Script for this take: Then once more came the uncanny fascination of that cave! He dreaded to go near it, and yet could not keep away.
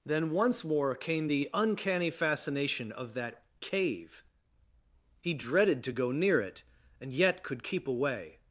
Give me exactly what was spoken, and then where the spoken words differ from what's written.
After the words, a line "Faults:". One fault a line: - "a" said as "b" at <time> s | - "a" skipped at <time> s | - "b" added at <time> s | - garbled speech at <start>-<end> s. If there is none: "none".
Then once more came the uncanny fascination of that cave! He dreaded to go near it, and yet could keep away.
Faults:
- "not" skipped at 7.6 s